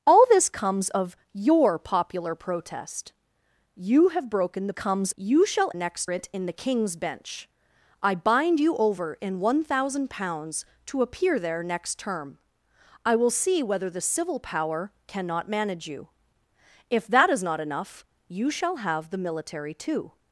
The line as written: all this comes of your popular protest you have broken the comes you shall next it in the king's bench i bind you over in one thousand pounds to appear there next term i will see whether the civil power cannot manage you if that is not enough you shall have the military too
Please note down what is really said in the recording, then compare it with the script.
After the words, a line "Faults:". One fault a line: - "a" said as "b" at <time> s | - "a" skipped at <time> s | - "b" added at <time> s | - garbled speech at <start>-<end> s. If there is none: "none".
all this comes of your popular protest you have broken the comes you shall next it in the king's bench i bind you over in one thousand pounds to appear there next term i will see whether the civil power cannot manage you if that is not enough you shall have the military too
Faults:
none